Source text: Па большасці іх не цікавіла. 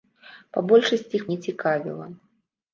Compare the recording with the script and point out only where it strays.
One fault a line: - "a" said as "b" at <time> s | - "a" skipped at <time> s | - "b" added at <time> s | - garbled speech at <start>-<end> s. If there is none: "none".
none